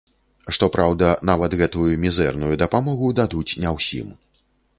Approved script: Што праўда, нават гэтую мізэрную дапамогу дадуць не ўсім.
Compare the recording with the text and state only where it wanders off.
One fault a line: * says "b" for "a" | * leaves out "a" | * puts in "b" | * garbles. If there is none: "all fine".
all fine